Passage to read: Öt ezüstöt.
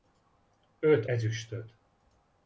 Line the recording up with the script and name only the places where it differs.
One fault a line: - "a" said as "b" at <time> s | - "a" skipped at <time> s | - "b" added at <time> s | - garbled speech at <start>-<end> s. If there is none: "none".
none